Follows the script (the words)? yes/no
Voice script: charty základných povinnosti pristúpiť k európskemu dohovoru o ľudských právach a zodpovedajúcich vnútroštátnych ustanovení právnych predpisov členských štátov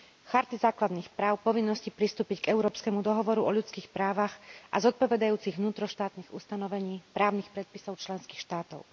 no